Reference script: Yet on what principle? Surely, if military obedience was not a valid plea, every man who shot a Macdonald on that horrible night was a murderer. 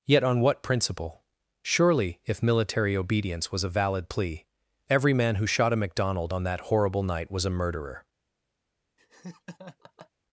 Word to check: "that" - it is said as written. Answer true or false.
true